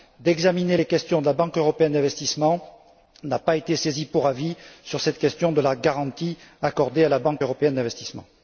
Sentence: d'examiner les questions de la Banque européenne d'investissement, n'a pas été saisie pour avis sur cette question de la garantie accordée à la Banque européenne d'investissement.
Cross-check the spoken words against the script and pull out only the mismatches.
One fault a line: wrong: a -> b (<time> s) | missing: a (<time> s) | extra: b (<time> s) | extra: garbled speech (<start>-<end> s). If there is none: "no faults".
no faults